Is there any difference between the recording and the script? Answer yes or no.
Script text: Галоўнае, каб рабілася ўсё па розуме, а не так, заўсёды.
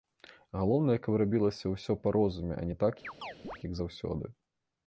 yes